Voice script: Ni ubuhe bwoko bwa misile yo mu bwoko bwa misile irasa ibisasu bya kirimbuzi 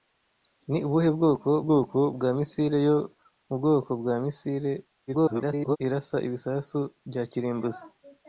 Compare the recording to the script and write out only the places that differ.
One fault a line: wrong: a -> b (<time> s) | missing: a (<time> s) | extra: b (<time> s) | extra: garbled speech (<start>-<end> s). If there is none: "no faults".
extra: bwoko (1.6 s)
extra: garbled speech (5.1-5.8 s)